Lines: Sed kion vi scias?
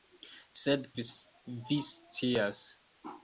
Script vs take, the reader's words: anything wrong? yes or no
yes